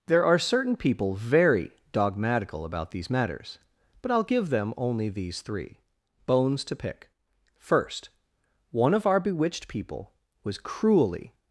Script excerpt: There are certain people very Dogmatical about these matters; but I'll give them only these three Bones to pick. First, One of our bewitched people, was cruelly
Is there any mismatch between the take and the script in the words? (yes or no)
no